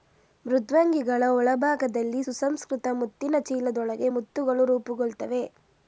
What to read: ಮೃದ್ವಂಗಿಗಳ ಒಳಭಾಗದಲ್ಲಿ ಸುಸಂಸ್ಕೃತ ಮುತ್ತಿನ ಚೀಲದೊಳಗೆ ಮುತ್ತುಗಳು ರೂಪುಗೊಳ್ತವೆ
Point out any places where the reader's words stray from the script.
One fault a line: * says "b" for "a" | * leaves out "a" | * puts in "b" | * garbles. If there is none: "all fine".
all fine